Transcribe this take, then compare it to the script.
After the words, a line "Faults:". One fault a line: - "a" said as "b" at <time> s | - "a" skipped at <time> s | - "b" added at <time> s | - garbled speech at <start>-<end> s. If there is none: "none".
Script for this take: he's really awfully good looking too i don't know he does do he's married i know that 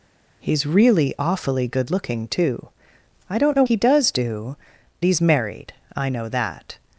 he's really awfully good looking too i don't know he does do he's married i know that
Faults:
none